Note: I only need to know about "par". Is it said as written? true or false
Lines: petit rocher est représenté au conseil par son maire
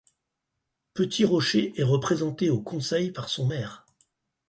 true